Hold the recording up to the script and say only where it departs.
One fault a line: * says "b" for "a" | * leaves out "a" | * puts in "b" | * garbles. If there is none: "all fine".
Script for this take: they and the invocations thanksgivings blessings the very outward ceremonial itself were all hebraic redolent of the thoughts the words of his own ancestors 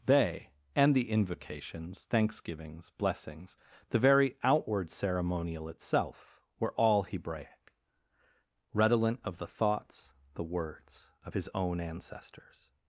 all fine